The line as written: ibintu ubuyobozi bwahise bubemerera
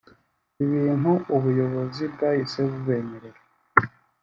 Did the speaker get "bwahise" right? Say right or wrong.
right